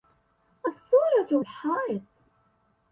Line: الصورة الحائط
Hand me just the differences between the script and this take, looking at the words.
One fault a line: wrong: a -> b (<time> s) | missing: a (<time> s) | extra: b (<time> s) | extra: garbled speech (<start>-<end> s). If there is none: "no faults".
no faults